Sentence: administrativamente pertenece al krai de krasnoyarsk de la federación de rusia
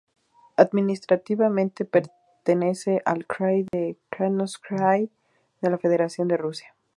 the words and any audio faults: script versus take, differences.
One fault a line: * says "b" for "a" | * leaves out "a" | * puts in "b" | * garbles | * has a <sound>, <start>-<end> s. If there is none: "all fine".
* has a dropout, 3.7-3.7 s